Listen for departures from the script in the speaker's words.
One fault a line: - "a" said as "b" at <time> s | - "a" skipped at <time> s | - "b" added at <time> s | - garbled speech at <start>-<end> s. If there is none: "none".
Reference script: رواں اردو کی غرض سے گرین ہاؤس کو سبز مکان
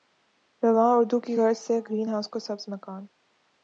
none